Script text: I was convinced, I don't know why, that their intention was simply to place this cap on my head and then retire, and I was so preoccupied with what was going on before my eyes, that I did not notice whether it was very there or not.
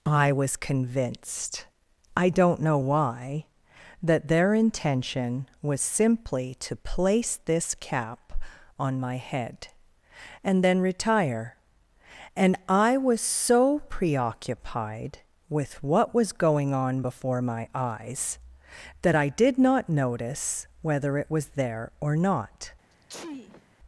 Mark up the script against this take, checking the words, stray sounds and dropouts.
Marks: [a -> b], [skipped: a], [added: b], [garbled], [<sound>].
I was convinced, I don't know why, that their intention was simply to place this cap on my head and then retire, and I was so preoccupied with what was going on before my eyes, that I did not notice whether it was [skipped: very] there or not. [sneeze]